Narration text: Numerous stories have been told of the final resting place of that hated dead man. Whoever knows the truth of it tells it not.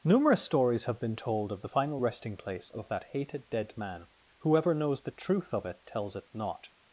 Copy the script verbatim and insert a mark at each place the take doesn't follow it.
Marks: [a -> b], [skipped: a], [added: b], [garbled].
Numerous stories have been told of the final resting place of that hated dead man. Whoever knows the truth of it tells it not.